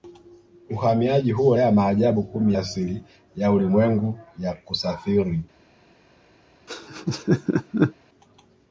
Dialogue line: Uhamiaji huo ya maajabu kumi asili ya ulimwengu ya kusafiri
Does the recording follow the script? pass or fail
pass